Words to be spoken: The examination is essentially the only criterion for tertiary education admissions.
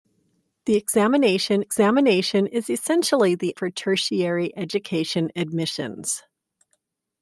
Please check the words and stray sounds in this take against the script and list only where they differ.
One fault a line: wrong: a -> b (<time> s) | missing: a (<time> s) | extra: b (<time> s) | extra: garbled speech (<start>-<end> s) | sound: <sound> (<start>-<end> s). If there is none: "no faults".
extra: examination (1.6 s)
missing: only criterion (3.6 s)